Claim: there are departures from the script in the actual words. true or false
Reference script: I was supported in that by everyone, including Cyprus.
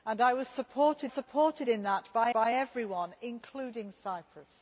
true